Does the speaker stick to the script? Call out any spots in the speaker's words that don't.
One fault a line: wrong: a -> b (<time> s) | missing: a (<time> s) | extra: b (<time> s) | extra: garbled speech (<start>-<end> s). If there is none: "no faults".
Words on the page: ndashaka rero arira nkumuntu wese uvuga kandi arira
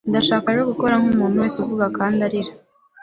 wrong: arira -> gukora (0.7 s)